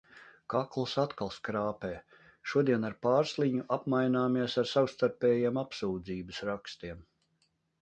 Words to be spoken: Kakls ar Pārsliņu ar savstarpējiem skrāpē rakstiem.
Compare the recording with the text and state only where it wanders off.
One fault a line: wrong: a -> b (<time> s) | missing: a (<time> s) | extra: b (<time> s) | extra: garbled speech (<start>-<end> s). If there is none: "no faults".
extra: atkal skrāpē Šodien (1.0 s)
extra: apmaināmies (3.8 s)
wrong: skrāpē -> apsūdzības (5.7 s)